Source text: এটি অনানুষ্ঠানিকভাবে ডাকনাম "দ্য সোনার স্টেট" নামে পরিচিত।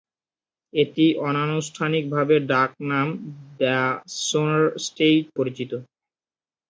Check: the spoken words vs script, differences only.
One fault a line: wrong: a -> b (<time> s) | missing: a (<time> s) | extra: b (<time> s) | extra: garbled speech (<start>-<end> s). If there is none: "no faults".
missing: নামে (5.2 s)